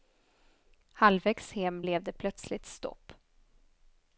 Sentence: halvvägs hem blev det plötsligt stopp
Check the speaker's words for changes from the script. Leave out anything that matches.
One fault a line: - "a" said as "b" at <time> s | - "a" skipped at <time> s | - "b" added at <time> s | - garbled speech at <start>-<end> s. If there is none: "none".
none